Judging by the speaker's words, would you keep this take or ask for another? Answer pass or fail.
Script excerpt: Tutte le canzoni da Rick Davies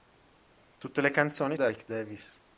pass